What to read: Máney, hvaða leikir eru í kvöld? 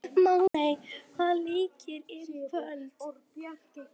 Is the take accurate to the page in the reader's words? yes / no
yes